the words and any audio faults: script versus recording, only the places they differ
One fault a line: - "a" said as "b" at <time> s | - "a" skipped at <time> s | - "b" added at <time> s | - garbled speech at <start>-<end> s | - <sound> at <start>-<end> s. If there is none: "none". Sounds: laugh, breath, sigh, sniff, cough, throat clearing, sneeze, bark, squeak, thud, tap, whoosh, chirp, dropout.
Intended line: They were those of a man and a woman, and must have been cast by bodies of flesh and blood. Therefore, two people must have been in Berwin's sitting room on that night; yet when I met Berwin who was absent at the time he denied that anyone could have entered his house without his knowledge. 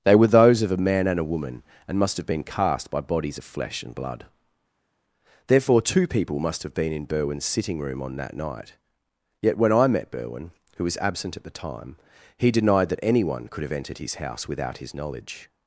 none